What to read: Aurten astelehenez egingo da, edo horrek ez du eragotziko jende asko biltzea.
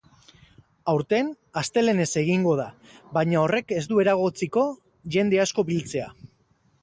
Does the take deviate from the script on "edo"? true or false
true